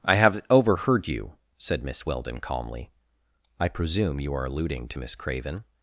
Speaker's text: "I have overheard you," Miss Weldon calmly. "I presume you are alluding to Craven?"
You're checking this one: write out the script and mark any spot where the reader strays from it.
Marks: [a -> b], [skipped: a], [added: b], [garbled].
"I have overheard you," [added: said] Miss Weldon calmly. "I presume you are alluding to [added: Miss] Craven?"